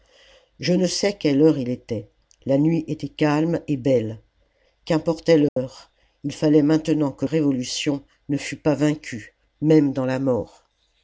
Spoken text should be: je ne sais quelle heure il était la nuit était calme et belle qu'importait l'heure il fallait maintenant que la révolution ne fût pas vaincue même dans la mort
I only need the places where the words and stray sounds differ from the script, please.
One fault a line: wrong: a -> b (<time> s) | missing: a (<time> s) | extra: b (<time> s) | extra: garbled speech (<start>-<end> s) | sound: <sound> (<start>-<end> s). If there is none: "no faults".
sound: dropout (5.5-5.6 s)
missing: la (7.3 s)